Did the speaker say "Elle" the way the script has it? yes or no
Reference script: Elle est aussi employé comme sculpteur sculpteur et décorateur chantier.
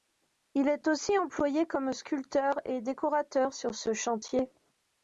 no